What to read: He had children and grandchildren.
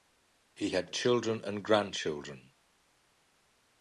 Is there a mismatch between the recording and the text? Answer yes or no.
no